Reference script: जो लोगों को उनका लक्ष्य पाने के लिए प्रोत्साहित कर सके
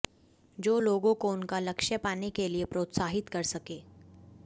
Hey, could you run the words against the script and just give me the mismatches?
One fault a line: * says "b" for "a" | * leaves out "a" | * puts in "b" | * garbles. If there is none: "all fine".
all fine